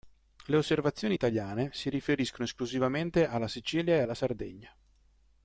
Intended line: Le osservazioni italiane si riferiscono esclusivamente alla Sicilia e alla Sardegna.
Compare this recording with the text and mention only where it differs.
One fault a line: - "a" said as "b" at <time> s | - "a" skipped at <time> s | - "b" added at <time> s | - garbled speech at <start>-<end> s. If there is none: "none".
none